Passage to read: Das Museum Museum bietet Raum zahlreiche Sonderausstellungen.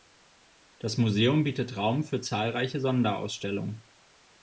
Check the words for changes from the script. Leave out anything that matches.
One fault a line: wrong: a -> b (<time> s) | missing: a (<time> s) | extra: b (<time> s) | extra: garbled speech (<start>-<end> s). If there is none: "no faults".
missing: Museum (1.4 s)
extra: für (2.0 s)